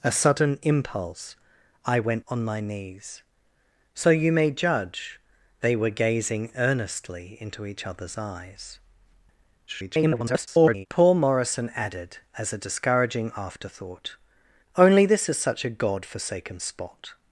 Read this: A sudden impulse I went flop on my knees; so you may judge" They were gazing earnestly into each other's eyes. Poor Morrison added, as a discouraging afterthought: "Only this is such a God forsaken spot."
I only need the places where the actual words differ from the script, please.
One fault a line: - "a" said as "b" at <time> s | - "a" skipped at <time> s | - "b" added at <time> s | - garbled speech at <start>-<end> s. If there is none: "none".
- "flop" skipped at 2.2 s
- garbled speech at 9.7-10.9 s